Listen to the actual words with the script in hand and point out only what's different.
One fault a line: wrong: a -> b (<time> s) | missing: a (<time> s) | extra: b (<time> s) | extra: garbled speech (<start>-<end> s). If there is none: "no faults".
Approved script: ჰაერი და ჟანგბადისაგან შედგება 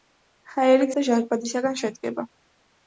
no faults